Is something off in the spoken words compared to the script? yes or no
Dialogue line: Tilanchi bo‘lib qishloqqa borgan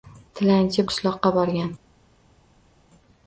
yes